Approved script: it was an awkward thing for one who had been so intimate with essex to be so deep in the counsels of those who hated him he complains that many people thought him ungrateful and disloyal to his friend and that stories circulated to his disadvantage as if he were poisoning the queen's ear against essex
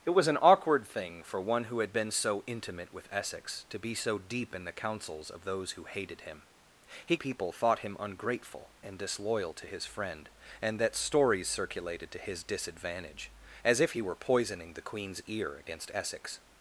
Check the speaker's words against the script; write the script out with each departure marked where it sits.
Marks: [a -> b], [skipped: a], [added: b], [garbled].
it was an awkward thing for one who had been so intimate with essex to be so deep in the counsels of those who hated him he [skipped: complains that many] people thought him ungrateful and disloyal to his friend and that stories circulated to his disadvantage as if he were poisoning the queen's ear against essex